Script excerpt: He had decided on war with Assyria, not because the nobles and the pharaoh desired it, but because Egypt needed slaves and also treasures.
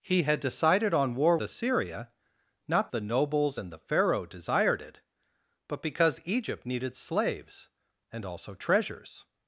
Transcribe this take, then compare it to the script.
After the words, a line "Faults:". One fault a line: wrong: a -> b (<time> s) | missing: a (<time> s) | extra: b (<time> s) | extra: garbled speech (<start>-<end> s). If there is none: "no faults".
He had decided on war Assyria, not the nobles and the pharaoh desired it, but because Egypt needed slaves and also treasures.
Faults:
missing: with (1.4 s)
missing: because (2.9 s)